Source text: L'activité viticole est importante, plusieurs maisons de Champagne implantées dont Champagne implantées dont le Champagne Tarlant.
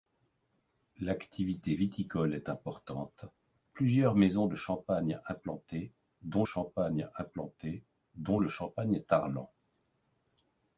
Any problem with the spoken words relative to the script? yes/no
no